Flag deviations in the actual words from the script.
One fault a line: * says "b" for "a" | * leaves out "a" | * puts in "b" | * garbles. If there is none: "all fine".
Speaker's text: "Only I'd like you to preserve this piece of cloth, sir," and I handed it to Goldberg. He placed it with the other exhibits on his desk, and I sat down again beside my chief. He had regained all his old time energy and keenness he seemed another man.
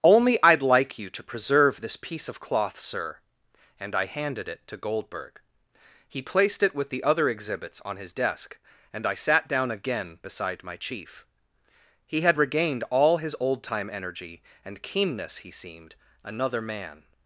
all fine